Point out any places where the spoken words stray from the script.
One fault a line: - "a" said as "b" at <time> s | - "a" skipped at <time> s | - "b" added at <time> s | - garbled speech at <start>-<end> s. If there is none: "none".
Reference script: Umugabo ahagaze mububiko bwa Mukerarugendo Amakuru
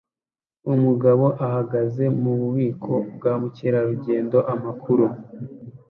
none